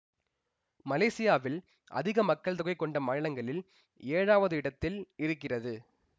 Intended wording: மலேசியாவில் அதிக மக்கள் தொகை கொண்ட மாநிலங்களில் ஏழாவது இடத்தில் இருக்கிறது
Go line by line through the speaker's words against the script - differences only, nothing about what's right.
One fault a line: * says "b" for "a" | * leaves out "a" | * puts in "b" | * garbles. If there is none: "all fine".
all fine